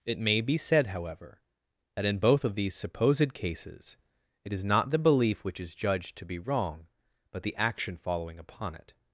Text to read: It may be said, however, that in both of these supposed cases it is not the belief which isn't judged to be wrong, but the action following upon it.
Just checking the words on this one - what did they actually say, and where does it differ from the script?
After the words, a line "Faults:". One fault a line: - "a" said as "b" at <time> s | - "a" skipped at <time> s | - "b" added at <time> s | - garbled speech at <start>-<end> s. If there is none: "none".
It may be said, however, that in both of these supposed cases it is not the belief which is judged to be wrong, but the action following upon it.
Faults:
- "isn't" said as "is" at 5.6 s